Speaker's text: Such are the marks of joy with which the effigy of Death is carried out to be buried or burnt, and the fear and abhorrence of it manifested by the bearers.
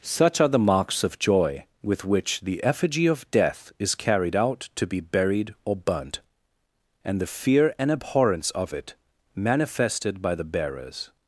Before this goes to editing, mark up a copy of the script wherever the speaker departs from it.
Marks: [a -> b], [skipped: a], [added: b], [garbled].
Such are the marks of joy with which the effigy of Death is carried out to be buried or burnt, and the fear and abhorrence of it manifested by the bearers.